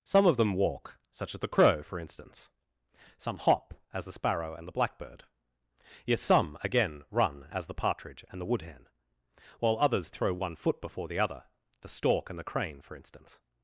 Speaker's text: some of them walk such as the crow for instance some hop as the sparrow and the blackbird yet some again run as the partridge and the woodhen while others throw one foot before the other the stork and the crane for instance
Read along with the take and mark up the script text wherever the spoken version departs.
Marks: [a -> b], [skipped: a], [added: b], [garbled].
some of them walk such as the crow for instance some hop as the sparrow and the blackbird yet some again run as the partridge and the woodhen while others throw one foot before the other the stork and the crane for instance